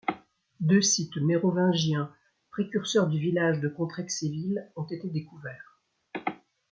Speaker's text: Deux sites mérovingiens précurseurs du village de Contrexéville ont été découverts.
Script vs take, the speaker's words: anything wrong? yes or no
no